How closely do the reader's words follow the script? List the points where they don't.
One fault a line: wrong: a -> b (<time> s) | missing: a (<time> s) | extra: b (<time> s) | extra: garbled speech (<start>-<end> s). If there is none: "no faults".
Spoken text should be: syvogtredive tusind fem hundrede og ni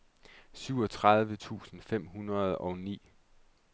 no faults